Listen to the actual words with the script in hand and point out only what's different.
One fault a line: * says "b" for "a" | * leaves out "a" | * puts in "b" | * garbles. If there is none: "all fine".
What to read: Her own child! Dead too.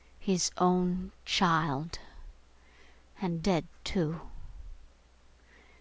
* says "His" for "Her"
* puts in "And"